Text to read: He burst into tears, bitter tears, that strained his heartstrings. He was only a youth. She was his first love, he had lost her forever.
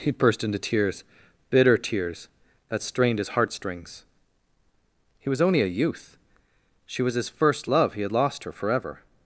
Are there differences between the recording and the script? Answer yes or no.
no